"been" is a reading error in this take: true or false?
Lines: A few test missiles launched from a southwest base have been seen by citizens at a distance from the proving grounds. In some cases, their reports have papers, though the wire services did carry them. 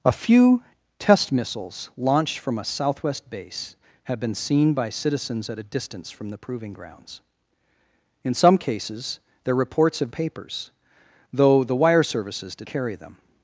false